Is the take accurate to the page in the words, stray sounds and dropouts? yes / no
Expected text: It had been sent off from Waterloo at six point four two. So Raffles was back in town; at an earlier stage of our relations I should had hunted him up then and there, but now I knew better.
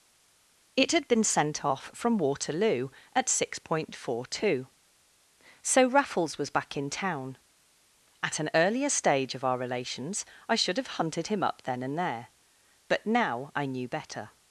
no